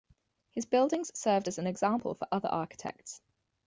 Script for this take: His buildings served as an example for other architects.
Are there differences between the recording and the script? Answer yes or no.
no